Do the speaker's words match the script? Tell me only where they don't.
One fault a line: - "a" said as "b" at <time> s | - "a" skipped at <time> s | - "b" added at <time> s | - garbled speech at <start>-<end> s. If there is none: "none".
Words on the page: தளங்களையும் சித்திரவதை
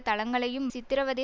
none